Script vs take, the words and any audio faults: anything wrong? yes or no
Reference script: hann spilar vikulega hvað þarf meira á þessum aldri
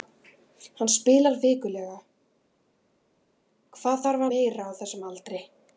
no